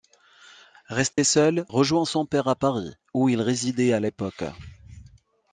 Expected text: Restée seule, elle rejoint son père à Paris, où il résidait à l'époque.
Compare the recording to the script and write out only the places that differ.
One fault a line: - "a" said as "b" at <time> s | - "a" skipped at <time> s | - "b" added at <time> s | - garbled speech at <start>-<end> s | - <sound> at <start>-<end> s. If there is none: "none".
- dropout at 1.1-1.2 s
- "elle" skipped at 1.7 s